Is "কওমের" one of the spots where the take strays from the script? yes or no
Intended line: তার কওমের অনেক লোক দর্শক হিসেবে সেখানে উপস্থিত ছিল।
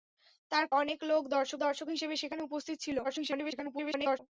yes